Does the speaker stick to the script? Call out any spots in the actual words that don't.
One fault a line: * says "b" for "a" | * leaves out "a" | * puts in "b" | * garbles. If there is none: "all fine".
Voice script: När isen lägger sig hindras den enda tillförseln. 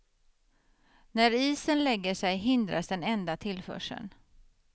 all fine